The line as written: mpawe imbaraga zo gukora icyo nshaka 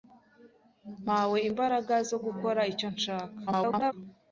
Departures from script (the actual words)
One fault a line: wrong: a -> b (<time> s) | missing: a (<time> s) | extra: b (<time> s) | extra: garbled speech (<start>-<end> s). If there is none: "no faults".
extra: garbled speech (3.5-3.9 s)